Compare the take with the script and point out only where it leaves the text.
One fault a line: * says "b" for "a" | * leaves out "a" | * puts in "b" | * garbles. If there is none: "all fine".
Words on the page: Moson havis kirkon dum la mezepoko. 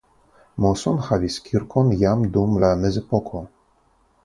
* puts in "jam"